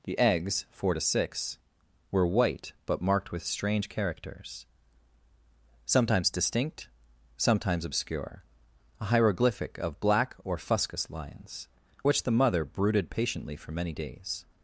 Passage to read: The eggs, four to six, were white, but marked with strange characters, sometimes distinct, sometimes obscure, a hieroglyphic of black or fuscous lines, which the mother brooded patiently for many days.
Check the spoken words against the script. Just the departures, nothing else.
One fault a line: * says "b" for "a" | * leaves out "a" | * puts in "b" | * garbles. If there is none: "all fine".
all fine